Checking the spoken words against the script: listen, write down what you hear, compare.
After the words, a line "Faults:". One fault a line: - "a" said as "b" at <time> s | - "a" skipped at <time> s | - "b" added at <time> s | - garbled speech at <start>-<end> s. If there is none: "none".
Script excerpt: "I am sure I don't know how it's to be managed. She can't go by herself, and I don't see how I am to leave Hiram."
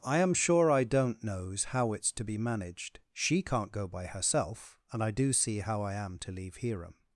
"I am sure I don't knows how it's to be managed. She can't go by herself, and I do see how I am to leave Hiram."
Faults:
- "know" said as "knows" at 1.2 s
- "don't" said as "do" at 5.1 s